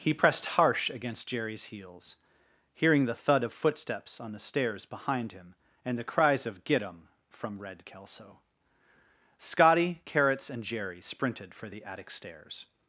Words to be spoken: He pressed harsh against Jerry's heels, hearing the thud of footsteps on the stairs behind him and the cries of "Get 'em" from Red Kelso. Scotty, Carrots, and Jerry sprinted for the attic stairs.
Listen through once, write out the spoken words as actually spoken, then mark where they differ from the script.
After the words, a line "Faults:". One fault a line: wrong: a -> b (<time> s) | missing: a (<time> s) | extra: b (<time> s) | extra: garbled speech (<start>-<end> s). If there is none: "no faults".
He pressed harsh against Jerry's heels, hearing the thud of footsteps on the stairs behind him and the cries of "Get 'em" from Red Kelso. Scotty, Carrots, and Jerry sprinted for the attic stairs.
Faults:
no faults